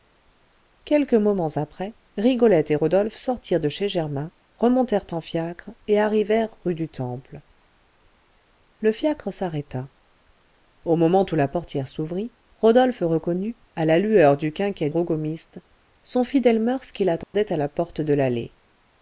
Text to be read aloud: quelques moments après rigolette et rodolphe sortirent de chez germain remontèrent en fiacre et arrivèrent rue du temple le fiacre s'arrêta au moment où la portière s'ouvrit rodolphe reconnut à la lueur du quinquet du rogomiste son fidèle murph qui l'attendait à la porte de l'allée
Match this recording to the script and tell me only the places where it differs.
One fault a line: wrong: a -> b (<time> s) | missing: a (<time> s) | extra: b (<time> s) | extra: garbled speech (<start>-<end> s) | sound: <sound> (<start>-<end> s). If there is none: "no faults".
missing: du (14.9 s)
sound: dropout (17.2-17.3 s)